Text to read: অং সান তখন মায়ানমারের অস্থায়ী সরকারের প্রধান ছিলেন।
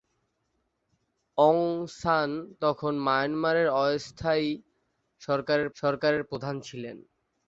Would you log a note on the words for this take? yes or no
yes